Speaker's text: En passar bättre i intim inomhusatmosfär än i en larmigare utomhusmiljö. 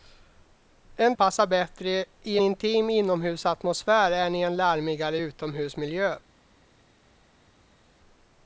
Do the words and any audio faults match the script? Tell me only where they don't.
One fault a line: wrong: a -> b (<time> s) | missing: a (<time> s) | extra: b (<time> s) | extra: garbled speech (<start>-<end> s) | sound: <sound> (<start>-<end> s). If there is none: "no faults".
no faults